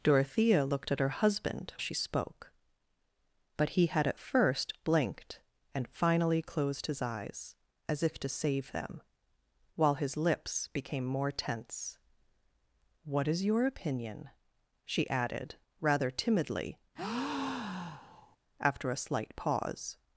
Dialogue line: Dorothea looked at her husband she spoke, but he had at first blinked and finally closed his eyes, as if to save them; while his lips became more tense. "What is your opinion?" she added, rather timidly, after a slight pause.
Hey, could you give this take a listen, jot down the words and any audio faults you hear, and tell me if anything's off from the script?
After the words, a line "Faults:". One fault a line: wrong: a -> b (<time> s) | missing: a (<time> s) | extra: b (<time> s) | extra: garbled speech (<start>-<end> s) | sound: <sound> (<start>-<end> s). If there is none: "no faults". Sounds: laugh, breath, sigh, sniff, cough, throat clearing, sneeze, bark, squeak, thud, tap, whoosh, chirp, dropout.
Dorothea looked at her husband she spoke, but he had at first blinked and finally closed his eyes, as if to save them; while his lips became more tense. "What is your opinion?" she added, rather timidly, after a slight pause.
Faults:
sound: breath (17.0-18.4 s)